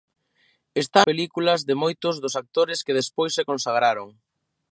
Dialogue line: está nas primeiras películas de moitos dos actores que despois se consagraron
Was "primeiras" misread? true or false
true